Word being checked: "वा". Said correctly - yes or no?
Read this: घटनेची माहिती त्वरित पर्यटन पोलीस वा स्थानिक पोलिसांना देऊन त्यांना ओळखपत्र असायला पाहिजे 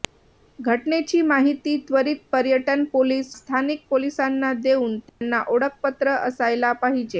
no